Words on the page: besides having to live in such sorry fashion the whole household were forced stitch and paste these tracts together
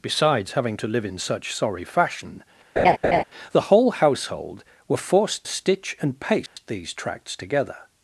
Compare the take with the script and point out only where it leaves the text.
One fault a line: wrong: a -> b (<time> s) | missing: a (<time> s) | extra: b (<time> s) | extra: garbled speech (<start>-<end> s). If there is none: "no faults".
no faults